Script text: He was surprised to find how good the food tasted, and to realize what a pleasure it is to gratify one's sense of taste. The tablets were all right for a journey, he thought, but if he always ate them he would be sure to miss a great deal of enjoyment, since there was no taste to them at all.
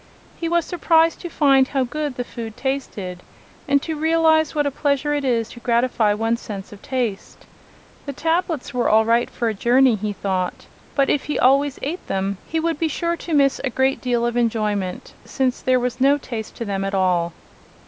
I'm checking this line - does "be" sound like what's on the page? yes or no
yes